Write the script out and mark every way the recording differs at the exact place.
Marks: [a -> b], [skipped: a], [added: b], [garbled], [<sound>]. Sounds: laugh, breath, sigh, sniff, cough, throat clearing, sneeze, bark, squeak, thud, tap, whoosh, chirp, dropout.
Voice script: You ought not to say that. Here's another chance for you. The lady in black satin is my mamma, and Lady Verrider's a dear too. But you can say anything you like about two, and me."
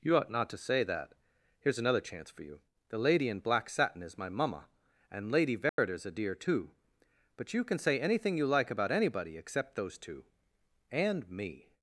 You ought not to say that. Here's another chance for you. The lady in black satin is my mamma, and Lady Verrider's [dropout] a dear too. But you can say anything you like about [added: anybody except those] two, and me."